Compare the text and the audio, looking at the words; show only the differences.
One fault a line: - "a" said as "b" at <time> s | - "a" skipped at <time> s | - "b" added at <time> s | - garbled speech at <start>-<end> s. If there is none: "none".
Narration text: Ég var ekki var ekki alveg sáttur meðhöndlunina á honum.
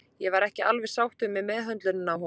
- "var ekki" skipped at 0.6 s
- "með" added at 1.3 s